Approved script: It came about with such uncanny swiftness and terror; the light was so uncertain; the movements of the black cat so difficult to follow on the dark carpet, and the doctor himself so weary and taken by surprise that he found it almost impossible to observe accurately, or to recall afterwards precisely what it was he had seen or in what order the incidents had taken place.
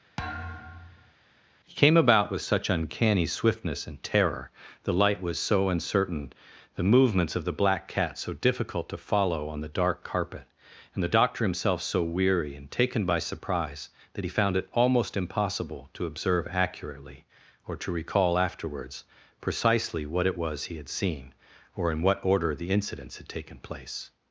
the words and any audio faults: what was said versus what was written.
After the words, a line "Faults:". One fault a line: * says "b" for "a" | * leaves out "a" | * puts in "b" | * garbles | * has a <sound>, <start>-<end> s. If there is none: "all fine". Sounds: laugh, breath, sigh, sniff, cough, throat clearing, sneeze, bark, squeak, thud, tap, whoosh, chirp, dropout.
He came about with such uncanny swiftness and terror; the light was so uncertain; the movements of the black cat so difficult to follow on the dark carpet, and the doctor himself so weary and taken by surprise that he found it almost impossible to observe accurately, or to recall afterwards precisely what it was he had seen or in what order the incidents had taken place.
Faults:
* has a thud, 0.2-1.1 s
* says "He" for "It"